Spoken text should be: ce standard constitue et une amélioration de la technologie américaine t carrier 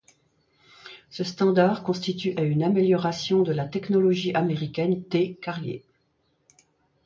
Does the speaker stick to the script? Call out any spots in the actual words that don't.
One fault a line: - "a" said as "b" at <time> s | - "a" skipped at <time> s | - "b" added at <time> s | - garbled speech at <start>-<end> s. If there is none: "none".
none